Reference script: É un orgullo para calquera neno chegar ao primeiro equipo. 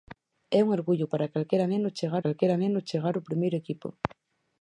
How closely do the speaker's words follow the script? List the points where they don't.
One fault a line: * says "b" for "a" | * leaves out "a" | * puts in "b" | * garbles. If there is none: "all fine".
* puts in "calquera neno chegar"